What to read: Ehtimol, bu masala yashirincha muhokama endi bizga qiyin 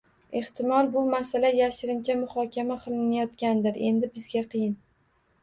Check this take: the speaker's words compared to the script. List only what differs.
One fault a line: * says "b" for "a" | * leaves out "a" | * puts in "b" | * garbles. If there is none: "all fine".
* puts in "qilinayotgandir"